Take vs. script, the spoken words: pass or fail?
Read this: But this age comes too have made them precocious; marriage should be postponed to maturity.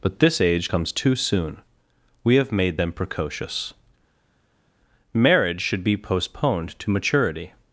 fail